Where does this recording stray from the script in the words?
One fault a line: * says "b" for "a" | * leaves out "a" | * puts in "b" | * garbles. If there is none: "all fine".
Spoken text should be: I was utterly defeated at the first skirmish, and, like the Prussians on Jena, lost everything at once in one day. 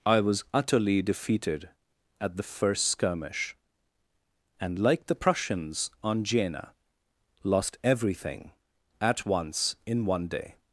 all fine